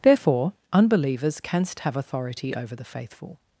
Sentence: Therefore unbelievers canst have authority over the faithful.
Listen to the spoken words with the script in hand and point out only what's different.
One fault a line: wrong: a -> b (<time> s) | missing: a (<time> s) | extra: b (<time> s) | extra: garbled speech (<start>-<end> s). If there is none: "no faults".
no faults